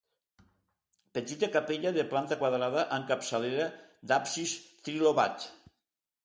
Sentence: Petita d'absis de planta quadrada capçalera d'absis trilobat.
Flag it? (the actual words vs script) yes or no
yes